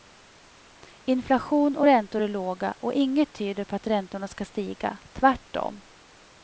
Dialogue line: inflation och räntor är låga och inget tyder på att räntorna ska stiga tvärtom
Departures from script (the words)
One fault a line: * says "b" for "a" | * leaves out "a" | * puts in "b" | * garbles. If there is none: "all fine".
all fine